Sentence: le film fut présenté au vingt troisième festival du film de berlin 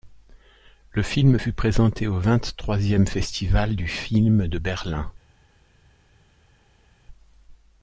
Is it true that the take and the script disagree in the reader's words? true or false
false